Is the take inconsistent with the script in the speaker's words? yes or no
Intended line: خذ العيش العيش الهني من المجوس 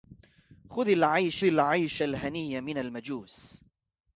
no